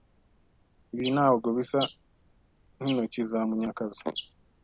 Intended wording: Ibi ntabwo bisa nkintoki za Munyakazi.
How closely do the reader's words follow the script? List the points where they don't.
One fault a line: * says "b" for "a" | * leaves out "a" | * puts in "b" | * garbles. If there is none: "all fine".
all fine